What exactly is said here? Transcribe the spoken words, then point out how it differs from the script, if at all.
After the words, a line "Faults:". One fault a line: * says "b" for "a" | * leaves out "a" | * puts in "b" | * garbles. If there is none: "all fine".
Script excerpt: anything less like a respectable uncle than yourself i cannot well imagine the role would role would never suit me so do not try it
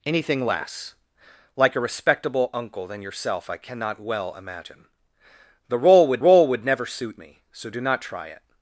anything less like a respectable uncle than yourself i cannot well imagine the role would role would never suit me so do not try it
Faults:
all fine